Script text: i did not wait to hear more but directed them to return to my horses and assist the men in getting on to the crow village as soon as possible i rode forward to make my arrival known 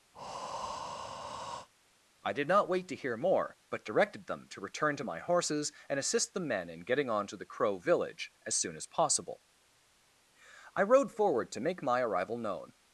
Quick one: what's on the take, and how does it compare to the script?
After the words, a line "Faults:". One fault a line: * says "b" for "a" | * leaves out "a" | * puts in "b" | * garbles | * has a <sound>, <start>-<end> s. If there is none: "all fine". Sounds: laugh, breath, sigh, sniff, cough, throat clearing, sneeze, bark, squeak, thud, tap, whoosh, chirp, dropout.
i did not wait to hear more but directed them to return to my horses and assist the men in getting on to the crow village as soon as possible i rode forward to make my arrival known
Faults:
* has a breath, 0.1-1.7 s